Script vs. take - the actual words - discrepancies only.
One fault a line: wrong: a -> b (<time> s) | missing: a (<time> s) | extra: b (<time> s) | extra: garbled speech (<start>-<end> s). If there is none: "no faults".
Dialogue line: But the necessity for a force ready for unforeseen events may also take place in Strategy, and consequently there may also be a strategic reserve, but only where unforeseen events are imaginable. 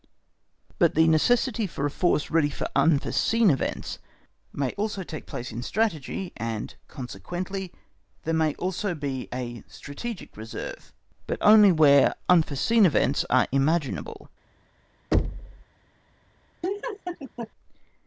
no faults